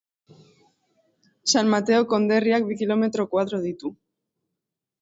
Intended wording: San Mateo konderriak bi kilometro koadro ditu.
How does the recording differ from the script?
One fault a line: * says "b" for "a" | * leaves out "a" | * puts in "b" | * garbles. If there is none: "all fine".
all fine